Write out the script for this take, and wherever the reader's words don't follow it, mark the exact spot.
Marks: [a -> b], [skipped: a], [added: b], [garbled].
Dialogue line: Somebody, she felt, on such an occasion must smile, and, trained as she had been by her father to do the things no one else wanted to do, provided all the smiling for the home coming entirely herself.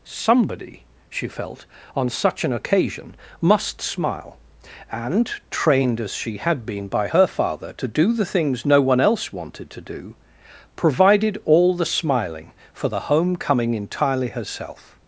Somebody, she felt, on such an occasion must smile, and, trained as she had been by her father to do the things no one else wanted to do, provided all the smiling for the home coming entirely herself.